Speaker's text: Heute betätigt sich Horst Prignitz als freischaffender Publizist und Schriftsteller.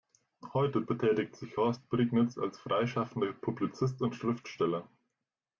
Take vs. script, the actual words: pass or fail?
pass